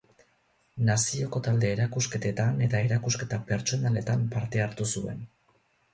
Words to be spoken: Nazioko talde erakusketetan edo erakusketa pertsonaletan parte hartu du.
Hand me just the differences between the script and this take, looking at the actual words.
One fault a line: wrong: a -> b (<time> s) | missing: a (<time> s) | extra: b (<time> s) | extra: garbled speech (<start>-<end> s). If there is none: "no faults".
wrong: edo -> eta (2.7 s)
wrong: du -> zuen (5.0 s)